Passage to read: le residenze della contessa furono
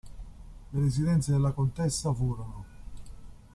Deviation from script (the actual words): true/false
false